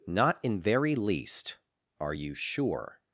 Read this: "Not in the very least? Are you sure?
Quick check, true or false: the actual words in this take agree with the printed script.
false